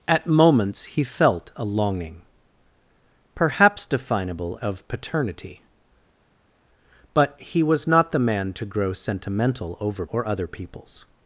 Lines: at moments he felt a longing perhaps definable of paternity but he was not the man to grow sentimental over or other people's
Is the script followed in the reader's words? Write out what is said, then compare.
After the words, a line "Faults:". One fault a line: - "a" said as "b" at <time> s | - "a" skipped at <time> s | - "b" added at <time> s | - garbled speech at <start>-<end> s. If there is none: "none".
at moments he felt a longing perhaps definable of paternity but he was not the man to grow sentimental over or other people's
Faults:
none